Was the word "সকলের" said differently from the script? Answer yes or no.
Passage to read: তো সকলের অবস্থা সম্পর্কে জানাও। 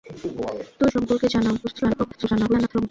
yes